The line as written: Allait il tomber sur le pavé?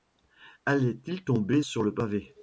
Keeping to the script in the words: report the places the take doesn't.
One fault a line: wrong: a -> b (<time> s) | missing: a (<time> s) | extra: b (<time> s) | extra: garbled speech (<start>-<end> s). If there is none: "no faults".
no faults